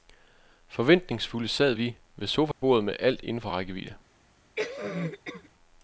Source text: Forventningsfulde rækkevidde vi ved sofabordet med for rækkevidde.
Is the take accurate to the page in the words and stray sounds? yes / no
no